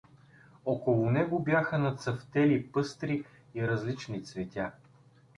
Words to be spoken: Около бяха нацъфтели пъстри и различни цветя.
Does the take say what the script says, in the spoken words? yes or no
no